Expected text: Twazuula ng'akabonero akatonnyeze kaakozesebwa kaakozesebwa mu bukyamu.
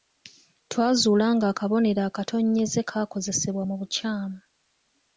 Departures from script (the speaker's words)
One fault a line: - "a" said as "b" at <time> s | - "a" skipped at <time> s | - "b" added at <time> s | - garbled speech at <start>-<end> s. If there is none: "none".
- "kaakozesebwa" skipped at 3.6 s